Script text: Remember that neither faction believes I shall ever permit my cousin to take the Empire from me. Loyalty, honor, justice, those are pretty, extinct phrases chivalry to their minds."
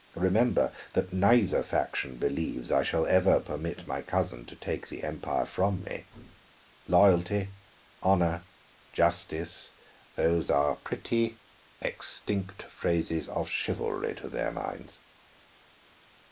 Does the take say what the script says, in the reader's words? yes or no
no